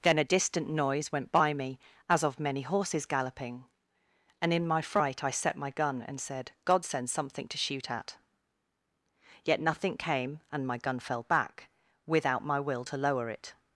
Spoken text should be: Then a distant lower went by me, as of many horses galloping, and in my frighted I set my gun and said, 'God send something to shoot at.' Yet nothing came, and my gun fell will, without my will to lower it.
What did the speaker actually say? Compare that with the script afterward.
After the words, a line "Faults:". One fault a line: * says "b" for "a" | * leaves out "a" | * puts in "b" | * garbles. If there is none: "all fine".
Then a distant noise went by me, as of many horses galloping, and in my fright I set my gun and said, 'God send something to shoot at.' Yet nothing came, and my gun fell back, without my will to lower it.
Faults:
* says "noise" for "lower"
* says "fright" for "frighted"
* says "back" for "will"